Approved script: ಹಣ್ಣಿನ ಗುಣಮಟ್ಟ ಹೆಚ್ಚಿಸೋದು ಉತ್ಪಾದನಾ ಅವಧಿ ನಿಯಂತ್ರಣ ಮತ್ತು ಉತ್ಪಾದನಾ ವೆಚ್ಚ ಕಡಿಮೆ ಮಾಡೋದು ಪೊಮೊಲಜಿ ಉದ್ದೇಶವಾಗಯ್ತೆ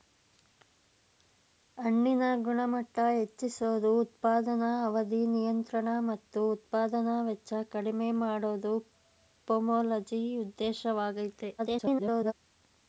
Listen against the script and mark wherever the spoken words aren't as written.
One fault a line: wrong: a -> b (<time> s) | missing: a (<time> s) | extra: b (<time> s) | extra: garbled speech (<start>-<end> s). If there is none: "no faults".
extra: garbled speech (11.6-12.3 s)